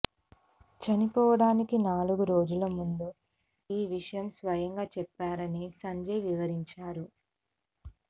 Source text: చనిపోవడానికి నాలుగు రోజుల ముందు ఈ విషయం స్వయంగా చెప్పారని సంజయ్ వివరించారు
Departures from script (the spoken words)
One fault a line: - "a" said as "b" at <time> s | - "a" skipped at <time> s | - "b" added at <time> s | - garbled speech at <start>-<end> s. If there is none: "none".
none